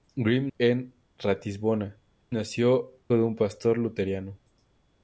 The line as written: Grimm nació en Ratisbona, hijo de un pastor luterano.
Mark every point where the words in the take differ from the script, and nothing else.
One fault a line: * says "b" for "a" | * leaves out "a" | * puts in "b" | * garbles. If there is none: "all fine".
* leaves out "nació"
* says "nació" for "hijo"